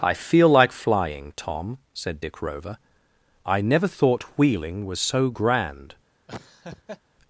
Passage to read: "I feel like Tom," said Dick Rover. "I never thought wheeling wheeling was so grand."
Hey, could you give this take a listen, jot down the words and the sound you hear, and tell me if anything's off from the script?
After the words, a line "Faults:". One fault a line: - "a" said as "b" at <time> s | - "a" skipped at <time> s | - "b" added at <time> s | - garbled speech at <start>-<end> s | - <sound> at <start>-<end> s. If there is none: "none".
"I feel like flying, Tom," said Dick Rover. "I never thought wheeling was so grand."
Faults:
- "flying" added at 0.7 s
- "wheeling" skipped at 4.9 s
- laugh at 6.3-7.0 s